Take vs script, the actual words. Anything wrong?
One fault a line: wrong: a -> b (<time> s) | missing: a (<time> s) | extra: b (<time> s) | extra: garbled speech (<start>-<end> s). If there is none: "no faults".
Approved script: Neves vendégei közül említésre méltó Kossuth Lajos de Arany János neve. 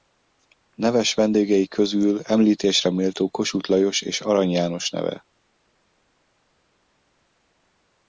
wrong: de -> és (4.0 s)